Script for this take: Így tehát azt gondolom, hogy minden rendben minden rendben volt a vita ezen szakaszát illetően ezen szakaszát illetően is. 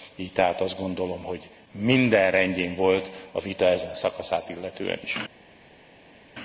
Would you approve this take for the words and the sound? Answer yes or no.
no